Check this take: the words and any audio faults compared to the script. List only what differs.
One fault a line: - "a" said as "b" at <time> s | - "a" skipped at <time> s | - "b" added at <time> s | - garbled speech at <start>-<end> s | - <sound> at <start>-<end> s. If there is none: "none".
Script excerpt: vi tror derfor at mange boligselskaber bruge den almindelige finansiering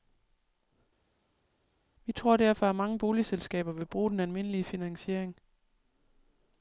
- "vil" added at 3.7 s